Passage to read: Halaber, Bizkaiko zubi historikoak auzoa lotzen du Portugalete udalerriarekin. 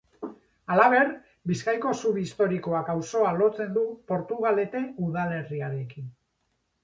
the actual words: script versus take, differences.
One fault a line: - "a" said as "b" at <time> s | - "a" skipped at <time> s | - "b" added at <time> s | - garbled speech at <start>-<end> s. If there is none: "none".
none